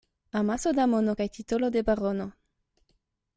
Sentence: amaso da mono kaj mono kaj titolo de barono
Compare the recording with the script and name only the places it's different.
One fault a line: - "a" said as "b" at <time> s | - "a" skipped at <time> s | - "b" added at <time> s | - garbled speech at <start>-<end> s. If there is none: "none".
- "mono kaj" skipped at 1.3 s